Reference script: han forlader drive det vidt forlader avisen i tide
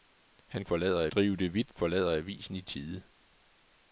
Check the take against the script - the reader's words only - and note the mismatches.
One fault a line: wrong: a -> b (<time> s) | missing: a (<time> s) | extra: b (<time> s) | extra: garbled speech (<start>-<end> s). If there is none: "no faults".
no faults